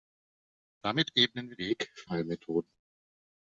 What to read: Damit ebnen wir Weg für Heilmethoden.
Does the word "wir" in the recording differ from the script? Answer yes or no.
no